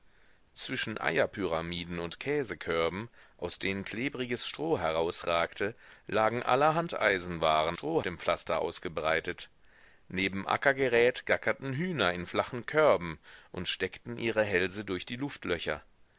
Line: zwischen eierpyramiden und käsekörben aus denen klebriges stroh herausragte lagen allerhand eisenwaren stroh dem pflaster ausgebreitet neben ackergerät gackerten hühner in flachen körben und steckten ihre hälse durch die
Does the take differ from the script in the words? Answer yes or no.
no